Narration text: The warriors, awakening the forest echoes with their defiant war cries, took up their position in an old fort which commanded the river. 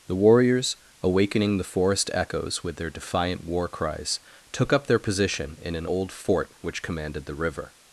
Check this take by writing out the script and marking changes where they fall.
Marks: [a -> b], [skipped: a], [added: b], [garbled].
The warriors, awakening the forest echoes with their defiant war cries, took up their position in an old fort which commanded the river.